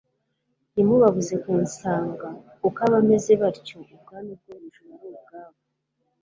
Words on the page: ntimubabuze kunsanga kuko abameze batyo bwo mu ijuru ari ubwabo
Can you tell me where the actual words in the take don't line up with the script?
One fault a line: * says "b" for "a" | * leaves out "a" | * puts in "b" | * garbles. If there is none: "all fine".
* puts in "ubwami"